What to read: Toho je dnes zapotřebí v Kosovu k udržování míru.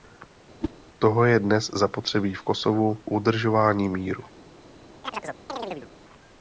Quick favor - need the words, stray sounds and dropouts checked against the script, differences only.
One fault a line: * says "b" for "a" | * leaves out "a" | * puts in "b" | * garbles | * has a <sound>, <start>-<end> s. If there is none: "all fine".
* has a whoosh, 0.6-0.7 s
* leaves out "k"
* has a chirp, 5.0-5.9 s